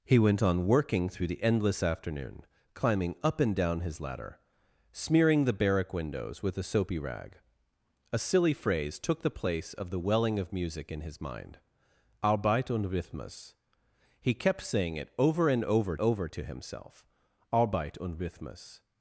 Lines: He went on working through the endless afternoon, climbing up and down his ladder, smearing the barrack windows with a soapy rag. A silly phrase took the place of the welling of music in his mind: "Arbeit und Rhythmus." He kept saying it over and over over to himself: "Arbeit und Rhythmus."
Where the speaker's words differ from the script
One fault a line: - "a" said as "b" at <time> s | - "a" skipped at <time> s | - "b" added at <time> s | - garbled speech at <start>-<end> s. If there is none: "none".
none